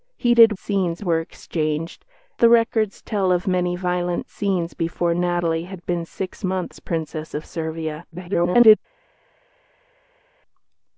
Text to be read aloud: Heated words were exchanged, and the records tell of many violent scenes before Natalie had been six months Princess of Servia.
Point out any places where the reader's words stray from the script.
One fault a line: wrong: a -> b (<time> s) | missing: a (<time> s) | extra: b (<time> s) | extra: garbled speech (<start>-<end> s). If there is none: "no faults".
wrong: words -> scenes (0.6 s)
missing: and (2.1 s)
extra: garbled speech (8.1-8.8 s)